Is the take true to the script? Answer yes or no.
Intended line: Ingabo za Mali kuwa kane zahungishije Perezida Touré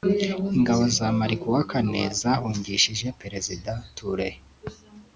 yes